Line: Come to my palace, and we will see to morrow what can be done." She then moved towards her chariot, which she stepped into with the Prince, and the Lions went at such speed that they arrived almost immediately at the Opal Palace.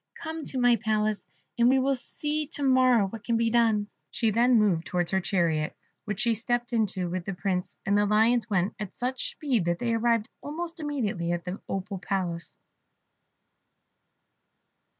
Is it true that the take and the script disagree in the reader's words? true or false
false